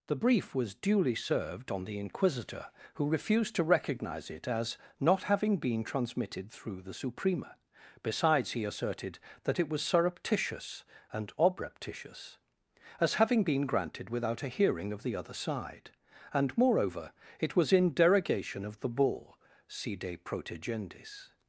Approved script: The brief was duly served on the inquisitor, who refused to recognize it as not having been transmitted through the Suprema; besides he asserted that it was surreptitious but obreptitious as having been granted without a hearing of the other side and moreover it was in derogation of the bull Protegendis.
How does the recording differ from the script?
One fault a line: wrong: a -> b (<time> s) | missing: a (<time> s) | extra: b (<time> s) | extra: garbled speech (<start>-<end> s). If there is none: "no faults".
wrong: but -> and (11.1 s)
extra: Si de (19.7 s)